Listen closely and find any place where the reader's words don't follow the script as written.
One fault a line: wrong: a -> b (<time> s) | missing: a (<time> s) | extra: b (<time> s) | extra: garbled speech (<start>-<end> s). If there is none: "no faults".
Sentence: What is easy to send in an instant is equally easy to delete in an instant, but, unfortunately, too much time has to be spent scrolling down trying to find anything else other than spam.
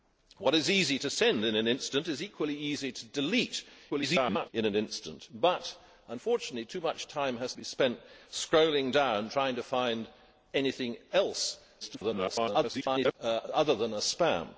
extra: garbled speech (3.9-4.5 s)
missing: to (7.5 s)
extra: garbled speech (11.8-13.1 s)